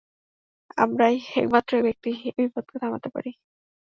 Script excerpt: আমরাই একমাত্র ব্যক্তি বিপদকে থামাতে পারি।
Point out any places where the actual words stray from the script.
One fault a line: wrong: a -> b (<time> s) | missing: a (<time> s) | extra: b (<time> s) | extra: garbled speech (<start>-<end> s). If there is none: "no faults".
extra: এই (2.3 s)